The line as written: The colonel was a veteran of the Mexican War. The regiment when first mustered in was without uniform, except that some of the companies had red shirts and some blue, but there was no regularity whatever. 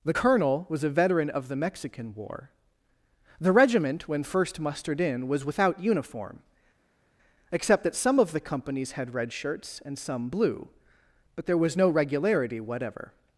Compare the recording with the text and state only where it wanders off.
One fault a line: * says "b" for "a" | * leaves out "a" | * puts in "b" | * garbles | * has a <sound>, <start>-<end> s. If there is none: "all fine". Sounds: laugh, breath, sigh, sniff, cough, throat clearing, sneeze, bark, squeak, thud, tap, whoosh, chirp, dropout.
all fine